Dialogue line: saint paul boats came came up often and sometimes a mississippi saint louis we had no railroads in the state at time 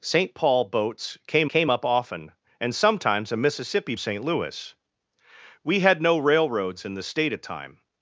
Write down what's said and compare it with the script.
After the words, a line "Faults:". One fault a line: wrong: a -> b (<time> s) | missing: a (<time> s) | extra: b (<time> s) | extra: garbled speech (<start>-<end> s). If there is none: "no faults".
saint paul boats came came up often and sometimes a mississippi saint louis we had no railroads in the state at time
Faults:
no faults